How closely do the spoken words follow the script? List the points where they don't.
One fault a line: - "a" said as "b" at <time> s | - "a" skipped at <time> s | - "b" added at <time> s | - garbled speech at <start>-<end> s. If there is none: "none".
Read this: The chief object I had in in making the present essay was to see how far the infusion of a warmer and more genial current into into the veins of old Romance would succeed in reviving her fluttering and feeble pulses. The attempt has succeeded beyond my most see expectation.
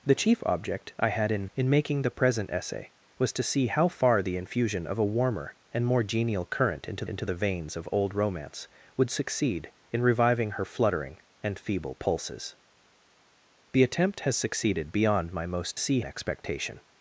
none